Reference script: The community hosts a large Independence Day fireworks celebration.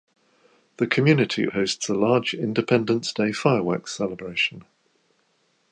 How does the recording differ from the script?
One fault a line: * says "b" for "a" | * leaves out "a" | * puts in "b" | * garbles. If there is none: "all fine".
all fine